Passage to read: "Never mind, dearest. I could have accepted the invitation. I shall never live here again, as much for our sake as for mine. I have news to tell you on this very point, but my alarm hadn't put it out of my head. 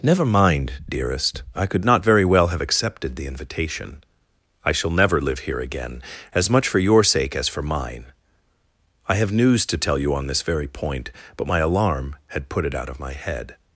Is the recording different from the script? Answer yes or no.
yes